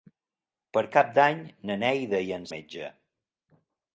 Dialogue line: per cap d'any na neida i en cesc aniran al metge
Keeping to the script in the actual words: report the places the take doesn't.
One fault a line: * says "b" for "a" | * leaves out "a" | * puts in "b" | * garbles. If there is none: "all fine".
* leaves out "cesc aniran al"